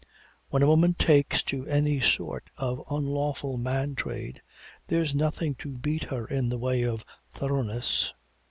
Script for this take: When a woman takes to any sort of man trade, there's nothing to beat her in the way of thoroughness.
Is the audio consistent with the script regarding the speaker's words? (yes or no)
no